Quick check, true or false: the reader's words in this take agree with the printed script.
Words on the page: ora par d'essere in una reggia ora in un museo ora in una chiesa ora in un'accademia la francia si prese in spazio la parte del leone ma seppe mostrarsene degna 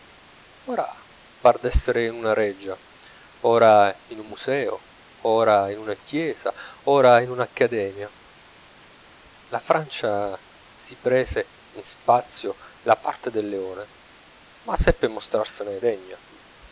true